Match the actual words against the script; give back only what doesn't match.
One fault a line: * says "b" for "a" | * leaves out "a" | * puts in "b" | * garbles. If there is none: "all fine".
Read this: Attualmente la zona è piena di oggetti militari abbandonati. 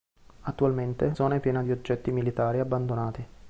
* leaves out "la"